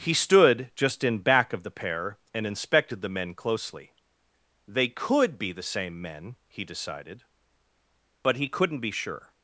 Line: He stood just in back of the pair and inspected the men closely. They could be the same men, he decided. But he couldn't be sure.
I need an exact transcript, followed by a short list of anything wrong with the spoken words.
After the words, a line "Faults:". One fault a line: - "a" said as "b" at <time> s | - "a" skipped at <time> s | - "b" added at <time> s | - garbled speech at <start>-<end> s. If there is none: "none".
He stood just in back of the pair and inspected the men closely. They could be the same men, he decided. But he couldn't be sure.
Faults:
none